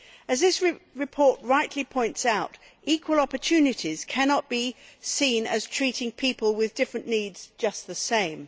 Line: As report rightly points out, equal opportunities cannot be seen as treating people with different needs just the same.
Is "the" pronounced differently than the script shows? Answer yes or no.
no